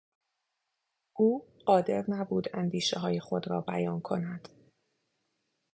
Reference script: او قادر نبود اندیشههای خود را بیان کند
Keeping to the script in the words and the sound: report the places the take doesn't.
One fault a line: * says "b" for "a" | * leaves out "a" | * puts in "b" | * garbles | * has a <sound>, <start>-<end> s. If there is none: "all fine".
all fine